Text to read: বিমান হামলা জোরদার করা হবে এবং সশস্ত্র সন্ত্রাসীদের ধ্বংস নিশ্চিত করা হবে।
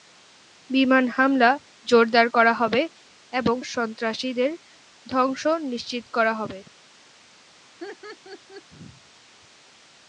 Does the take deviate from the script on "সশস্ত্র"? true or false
true